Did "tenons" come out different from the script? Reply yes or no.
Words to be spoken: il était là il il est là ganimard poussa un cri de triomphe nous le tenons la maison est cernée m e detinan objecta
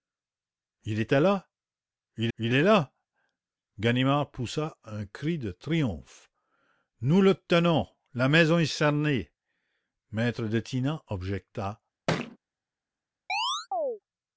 no